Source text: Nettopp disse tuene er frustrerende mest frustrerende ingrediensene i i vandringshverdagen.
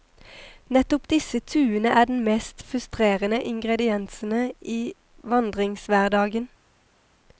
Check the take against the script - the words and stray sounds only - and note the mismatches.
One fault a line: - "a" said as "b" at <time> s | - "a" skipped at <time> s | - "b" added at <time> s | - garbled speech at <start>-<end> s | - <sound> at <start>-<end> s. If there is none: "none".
- "frustrerende" said as "den" at 2.0 s
- "i" skipped at 4.9 s